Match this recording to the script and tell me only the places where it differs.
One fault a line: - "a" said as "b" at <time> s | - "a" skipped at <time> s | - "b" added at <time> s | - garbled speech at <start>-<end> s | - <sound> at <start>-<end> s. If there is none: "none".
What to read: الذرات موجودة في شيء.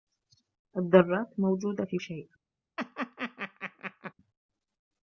- laugh at 2.8-4.1 s